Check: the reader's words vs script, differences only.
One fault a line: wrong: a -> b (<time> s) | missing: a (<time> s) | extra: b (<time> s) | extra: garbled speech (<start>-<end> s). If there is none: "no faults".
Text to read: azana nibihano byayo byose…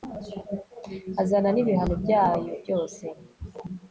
no faults